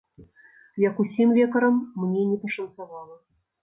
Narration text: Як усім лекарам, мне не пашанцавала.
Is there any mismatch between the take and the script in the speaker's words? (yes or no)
no